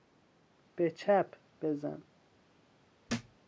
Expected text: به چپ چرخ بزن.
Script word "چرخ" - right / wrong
wrong